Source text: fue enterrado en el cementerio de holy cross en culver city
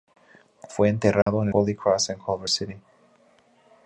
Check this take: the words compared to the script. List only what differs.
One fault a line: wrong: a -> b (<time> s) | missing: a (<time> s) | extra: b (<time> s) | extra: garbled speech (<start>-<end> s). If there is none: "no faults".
missing: el cementerio de (1.5 s)